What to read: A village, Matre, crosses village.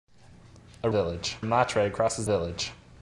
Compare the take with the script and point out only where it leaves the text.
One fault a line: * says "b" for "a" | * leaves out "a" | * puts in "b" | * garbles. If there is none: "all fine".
all fine